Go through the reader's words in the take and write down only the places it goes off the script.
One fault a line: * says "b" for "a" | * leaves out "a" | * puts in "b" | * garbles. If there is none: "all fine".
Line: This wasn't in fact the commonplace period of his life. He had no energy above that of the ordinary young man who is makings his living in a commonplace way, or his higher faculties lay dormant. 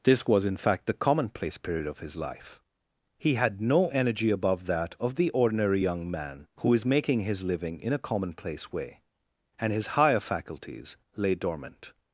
* says "was" for "wasn't"
* says "making" for "makings"
* says "and" for "or"